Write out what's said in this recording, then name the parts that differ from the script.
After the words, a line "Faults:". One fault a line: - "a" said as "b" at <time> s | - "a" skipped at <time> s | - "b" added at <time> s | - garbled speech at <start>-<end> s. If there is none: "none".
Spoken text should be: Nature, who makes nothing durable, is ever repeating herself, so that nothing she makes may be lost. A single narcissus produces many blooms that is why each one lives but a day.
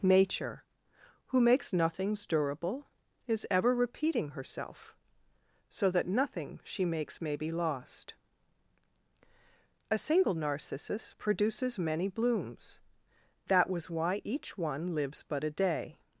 Nature, who makes nothings durable, is ever repeating herself, so that nothing she makes may be lost. A single narcissus produces many blooms that was why each one lives but a day.
Faults:
- "nothing" said as "nothings" at 1.7 s
- "is" said as "was" at 13.7 s